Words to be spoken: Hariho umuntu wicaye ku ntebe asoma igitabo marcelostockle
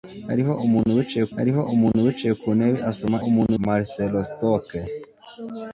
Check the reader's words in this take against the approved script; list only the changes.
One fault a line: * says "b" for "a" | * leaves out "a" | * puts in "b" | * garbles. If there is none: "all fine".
* puts in "hariho umuntu wicaye"
* says "umuntu" for "igitabo"